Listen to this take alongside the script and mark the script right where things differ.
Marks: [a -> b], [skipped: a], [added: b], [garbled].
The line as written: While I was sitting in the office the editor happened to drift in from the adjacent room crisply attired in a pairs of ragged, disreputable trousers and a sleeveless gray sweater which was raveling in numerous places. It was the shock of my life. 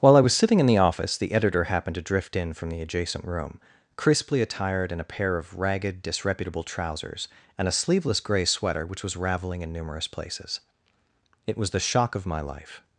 While I was sitting in the office the editor happened to drift in from the adjacent room crisply attired in a [pairs -> pair] of ragged, disreputable trousers and a sleeveless gray sweater which was raveling in numerous places. It was the shock of my life.